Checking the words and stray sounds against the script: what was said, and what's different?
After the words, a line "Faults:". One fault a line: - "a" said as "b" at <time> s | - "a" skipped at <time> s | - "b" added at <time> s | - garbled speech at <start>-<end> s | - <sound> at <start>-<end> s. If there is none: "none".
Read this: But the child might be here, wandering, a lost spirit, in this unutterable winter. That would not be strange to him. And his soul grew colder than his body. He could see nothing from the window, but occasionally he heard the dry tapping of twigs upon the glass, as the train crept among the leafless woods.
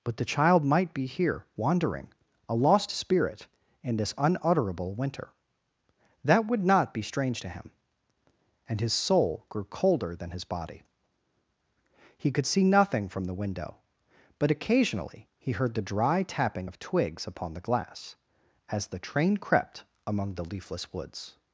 But the child might be here, wandering, a lost spirit, in this unutterable winter. That would not be strange to him. And his soul grew colder than his body. He could see nothing from the window, but occasionally he heard the dry tapping of twigs upon the glass, as the train crept among the leafless woods.
Faults:
none